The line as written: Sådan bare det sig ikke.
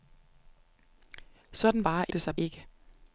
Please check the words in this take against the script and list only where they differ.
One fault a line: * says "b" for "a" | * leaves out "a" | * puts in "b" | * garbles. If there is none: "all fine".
all fine